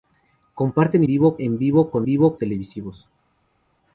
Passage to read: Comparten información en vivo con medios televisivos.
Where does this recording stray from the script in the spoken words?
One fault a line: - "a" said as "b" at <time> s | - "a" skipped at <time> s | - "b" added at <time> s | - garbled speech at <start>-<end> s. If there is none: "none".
- "información" said as "vivo" at 1.0 s
- "medios" said as "vivo" at 2.0 s